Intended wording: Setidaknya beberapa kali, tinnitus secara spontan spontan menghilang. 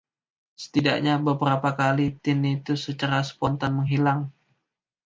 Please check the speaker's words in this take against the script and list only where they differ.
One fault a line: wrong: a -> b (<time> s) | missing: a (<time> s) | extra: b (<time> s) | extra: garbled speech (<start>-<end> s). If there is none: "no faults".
missing: spontan (3.9 s)